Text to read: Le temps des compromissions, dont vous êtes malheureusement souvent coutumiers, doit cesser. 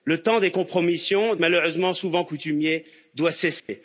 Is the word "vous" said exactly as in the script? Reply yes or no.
no